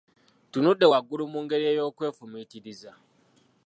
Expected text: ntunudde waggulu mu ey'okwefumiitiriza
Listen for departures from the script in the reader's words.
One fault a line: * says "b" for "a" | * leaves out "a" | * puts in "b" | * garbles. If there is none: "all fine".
* puts in "ngeri"